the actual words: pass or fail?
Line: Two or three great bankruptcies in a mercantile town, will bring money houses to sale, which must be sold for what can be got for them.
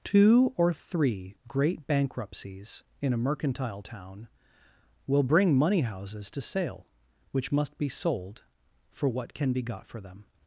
pass